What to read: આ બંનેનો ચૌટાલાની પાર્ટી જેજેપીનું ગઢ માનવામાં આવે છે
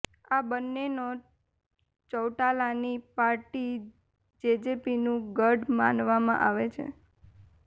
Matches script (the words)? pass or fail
pass